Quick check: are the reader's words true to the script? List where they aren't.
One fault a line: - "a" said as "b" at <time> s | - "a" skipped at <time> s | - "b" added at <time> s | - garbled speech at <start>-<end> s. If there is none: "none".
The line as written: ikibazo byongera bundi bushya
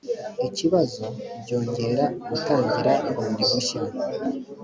- "gutangira" added at 2.3 s